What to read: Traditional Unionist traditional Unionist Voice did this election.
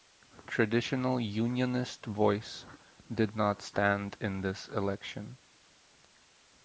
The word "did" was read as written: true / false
false